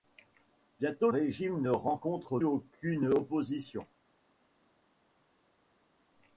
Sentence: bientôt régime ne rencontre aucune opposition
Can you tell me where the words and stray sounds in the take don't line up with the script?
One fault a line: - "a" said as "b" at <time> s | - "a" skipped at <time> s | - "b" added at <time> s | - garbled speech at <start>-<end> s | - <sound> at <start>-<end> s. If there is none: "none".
none